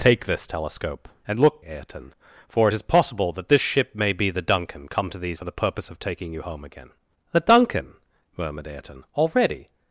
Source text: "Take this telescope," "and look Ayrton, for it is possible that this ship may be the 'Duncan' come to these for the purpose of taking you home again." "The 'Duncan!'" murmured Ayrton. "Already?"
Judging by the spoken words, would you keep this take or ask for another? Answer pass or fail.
pass